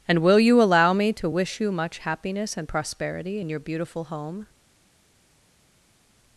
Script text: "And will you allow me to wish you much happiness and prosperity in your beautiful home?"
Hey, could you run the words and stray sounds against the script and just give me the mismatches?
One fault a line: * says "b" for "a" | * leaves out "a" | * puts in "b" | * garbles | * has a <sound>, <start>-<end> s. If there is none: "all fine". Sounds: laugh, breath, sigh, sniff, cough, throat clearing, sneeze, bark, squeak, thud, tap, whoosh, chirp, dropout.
all fine